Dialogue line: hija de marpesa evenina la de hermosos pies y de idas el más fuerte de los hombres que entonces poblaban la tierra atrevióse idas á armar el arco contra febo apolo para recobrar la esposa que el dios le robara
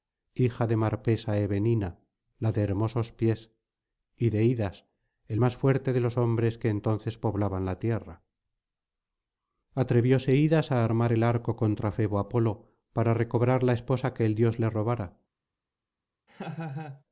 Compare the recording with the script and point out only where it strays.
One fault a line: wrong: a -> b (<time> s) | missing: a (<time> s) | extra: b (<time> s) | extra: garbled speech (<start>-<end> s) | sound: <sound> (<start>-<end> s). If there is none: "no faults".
sound: laugh (16.3-17.0 s)